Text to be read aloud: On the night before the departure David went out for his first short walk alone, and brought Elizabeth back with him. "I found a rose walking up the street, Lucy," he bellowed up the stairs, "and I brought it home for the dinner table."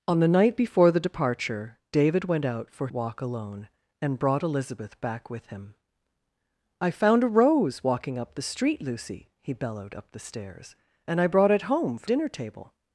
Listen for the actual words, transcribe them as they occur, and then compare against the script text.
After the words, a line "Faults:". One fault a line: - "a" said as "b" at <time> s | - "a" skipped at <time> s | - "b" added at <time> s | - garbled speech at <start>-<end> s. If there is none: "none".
On the night before the departure David went out for walk alone, and brought Elizabeth back with him. "I found a rose walking up the street, Lucy," he bellowed up the stairs, "and I brought it home for dinner table."
Faults:
- "his first short" skipped at 2.9 s
- "the" skipped at 12.1 s